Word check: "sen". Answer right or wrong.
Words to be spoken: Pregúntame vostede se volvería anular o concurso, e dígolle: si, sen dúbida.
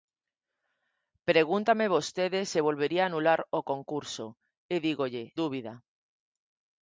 wrong